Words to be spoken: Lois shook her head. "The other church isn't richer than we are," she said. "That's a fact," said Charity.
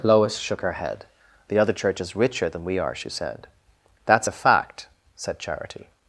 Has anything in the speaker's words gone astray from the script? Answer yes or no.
yes